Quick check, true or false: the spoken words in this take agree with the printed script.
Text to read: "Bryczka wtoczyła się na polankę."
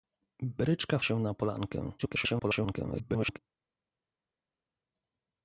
false